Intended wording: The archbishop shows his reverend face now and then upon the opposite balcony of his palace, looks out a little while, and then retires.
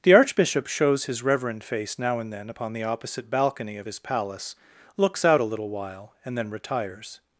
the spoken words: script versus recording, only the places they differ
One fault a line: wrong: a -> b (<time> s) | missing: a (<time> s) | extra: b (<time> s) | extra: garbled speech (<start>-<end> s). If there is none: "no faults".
no faults